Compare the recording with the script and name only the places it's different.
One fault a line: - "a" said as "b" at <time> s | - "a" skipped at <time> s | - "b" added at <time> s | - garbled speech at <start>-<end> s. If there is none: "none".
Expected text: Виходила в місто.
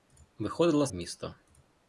none